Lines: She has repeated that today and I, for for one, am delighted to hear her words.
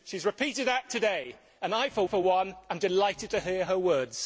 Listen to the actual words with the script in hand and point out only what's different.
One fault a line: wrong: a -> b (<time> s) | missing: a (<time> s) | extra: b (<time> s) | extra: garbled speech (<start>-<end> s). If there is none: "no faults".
no faults